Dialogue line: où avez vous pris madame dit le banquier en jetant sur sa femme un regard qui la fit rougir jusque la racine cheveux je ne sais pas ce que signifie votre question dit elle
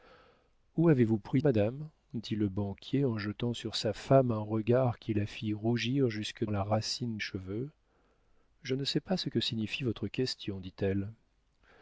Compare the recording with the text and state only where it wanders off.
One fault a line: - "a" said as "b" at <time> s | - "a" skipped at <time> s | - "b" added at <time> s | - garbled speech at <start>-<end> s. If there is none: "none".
none